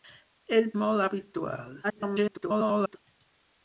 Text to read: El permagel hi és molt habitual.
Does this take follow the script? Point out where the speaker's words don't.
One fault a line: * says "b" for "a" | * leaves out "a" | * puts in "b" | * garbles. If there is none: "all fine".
* leaves out "permagel hi és"
* garbles